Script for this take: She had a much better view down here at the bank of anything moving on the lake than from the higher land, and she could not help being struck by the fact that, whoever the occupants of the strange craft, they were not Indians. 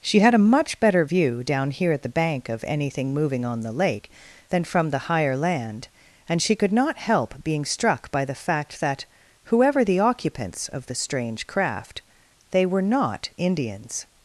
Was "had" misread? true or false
false